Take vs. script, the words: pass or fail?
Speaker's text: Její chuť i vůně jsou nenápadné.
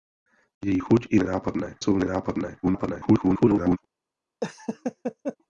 fail